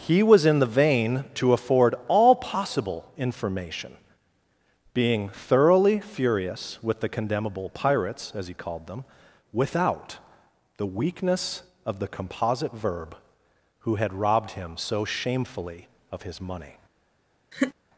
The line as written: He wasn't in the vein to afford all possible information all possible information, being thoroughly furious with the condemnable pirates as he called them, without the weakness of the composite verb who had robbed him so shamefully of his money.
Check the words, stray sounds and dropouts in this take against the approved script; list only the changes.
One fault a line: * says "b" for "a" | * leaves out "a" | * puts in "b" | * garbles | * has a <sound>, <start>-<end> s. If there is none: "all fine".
* says "was" for "wasn't"
* leaves out "all possible information"
* has a laugh, 17.5-17.7 s